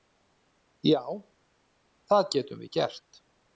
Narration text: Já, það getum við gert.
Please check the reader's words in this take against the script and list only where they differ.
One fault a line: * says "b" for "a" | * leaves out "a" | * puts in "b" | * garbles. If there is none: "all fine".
all fine